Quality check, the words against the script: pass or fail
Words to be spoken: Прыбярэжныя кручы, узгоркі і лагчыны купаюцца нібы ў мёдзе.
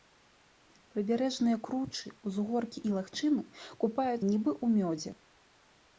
pass